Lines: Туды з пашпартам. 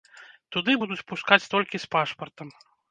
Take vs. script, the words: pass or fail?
fail